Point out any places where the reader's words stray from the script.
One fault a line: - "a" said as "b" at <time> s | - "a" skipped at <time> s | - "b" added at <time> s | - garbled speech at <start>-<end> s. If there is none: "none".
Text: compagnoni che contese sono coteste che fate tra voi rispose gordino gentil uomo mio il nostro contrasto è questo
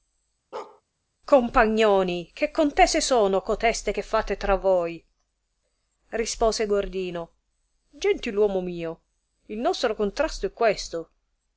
none